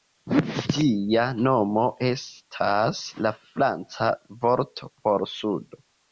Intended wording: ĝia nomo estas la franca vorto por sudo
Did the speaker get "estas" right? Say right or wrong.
right